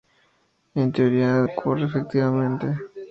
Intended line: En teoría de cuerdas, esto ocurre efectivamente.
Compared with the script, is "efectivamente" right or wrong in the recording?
right